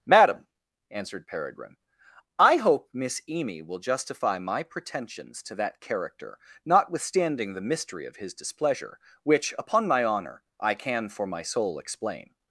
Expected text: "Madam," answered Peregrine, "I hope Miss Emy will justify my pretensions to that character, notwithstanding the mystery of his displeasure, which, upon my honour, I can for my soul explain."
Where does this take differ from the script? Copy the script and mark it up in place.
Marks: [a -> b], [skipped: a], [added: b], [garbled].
"Madam," answered Peregrine, "I hope Miss Emy will justify my pretensions to that character, notwithstanding the mystery of his displeasure, which, upon my honour, I can for my soul explain."